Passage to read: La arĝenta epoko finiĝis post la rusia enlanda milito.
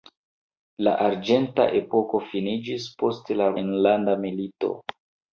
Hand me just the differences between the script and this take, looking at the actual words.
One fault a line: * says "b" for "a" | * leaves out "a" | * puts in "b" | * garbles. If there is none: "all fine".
* leaves out "rusia"